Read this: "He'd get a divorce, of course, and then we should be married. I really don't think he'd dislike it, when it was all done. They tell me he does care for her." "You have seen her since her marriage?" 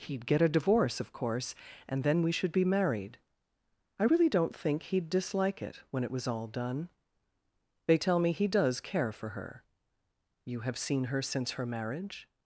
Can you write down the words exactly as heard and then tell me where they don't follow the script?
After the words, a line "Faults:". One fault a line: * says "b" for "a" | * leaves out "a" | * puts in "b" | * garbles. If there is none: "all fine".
"He'd get a divorce, of course, and then we should be married. I really don't think he'd dislike it, when it was all done. They tell me he does care for her." "You have seen her since her marriage?"
Faults:
all fine